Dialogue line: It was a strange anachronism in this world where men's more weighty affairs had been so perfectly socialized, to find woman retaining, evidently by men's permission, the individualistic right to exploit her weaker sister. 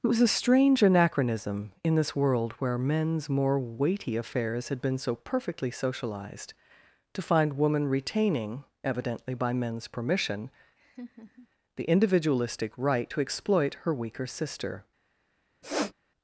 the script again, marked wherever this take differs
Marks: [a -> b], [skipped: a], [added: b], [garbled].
It was a strange anachronism in this world where men's more weighty affairs had been so perfectly socialized, to find woman retaining, evidently by men's permission, the individualistic right to exploit her weaker sister.